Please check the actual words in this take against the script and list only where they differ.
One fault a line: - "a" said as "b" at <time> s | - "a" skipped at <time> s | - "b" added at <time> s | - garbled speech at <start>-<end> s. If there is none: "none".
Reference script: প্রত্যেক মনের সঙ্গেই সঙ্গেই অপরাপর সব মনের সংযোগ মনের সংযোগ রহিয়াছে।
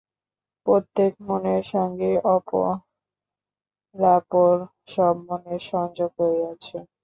- "সঙ্গেই" skipped at 2.2 s
- "মনের সংযোগ" skipped at 6.1 s